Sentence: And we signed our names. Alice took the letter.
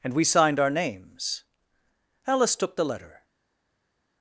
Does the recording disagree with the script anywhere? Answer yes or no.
no